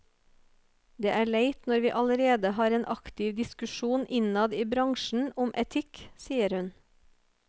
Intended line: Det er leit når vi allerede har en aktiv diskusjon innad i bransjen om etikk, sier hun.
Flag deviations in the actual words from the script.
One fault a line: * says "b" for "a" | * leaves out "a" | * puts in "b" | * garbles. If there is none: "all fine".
all fine